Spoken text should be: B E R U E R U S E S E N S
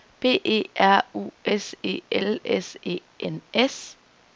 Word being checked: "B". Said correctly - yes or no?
yes